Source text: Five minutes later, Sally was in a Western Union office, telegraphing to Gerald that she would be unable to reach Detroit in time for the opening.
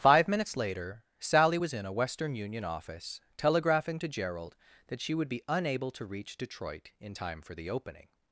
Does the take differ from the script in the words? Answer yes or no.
no